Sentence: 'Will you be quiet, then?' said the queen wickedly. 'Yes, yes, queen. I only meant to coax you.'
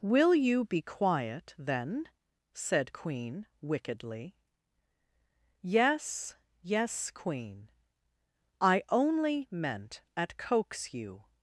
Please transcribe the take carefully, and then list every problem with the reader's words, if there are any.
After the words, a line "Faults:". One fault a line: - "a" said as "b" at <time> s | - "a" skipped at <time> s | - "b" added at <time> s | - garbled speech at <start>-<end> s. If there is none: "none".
'Will you be quiet, then?' said queen wickedly. 'Yes, yes, queen. I only meant at coax you.'
Faults:
- "the" skipped at 2.9 s
- "to" said as "at" at 10.1 s